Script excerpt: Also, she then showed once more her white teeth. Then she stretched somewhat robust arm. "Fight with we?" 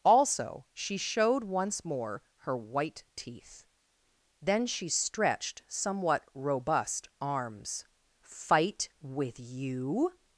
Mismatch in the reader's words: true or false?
true